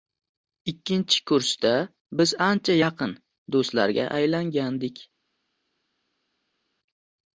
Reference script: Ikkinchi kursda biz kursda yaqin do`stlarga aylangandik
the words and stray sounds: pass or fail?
fail